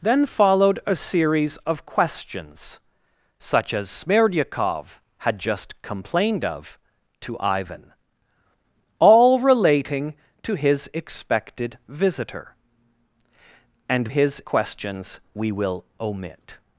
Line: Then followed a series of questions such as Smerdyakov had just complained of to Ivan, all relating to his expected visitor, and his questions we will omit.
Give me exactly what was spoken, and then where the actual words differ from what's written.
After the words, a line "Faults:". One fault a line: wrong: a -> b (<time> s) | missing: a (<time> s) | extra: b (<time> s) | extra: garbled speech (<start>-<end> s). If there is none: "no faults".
Then followed a series of questions such as Smerdyakov had just complained of to Ivan, all relating to his expected visitor, and his questions we will omit.
Faults:
no faults